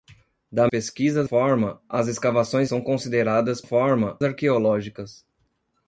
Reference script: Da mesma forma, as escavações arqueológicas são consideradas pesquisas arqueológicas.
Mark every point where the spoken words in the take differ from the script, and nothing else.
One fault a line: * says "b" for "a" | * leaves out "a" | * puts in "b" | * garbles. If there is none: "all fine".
* says "pesquisas" for "mesma"
* leaves out "arqueológicas"
* says "forma" for "pesquisas"